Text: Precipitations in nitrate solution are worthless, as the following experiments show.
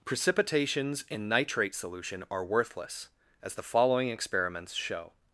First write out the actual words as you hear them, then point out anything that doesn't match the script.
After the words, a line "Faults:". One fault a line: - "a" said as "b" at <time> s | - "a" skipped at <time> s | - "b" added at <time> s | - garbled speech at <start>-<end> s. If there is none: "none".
Precipitations in nitrate solution are worthless, as the following experiments show.
Faults:
none